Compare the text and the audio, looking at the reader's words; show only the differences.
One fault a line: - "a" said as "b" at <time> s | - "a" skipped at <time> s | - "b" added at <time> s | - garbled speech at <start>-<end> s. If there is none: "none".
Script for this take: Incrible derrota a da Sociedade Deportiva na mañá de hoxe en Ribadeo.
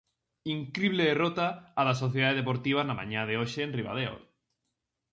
none